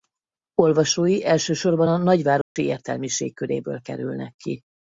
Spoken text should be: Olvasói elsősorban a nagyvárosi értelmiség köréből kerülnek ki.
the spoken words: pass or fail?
pass